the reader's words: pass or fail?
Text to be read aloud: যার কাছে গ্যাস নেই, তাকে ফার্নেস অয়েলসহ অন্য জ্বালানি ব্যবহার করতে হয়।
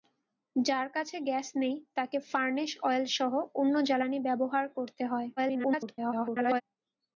fail